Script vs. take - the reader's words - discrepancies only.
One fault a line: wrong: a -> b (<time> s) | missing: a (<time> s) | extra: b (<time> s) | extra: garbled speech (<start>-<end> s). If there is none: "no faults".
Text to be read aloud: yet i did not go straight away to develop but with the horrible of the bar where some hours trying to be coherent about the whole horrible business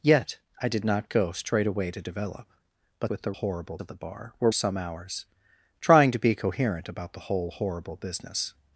no faults